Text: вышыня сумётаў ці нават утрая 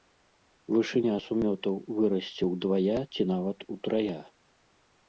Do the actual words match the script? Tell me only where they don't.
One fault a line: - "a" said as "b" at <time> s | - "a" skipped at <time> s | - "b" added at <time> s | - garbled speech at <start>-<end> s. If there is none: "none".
- "вырасце ўдвая" added at 2.0 s